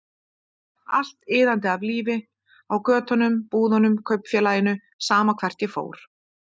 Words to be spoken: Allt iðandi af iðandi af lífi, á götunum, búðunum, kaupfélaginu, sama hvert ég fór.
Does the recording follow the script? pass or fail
fail